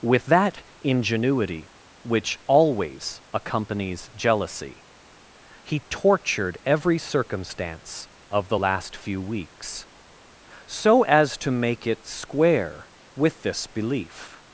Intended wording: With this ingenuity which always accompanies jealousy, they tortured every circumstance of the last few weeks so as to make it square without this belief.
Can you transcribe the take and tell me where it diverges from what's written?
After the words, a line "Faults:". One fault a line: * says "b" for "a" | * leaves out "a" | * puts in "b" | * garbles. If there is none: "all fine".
With that ingenuity which always accompanies jealousy, he tortured every circumstance of the last few weeks so as to make it square with this belief.
Faults:
* says "that" for "this"
* says "he" for "they"
* says "with" for "without"